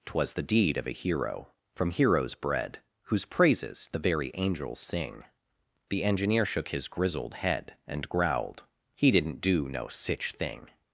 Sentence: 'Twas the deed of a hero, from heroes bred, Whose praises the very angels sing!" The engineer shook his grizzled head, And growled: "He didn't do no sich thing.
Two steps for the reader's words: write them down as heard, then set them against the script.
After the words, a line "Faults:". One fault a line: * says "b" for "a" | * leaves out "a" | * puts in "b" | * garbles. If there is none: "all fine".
'Twas the deed of a hero, from heroes bred, Whose praises the very angels sing!" The engineer shook his grizzled head, And growled: "He didn't do no sich thing.
Faults:
all fine